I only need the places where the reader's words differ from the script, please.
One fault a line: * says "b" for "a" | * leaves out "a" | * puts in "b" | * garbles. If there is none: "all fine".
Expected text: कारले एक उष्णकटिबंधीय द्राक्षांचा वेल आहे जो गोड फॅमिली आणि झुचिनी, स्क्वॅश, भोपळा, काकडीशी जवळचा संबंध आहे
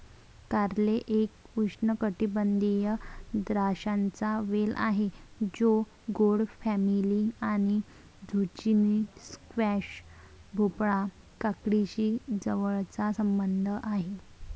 all fine